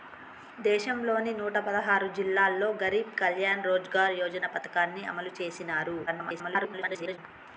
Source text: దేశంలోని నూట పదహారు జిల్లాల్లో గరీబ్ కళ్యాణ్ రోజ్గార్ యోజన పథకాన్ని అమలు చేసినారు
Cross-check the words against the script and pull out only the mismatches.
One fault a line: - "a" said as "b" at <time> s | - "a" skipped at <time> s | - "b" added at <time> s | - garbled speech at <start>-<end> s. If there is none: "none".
- garbled speech at 6.1-7.2 s